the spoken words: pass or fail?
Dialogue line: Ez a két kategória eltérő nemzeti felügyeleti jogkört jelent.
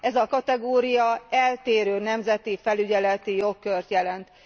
fail